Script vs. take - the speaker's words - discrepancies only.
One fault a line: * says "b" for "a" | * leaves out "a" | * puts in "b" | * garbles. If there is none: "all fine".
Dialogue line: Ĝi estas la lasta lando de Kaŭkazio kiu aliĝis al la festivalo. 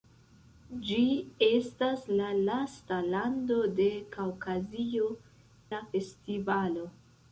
* leaves out "kiu aliĝis al"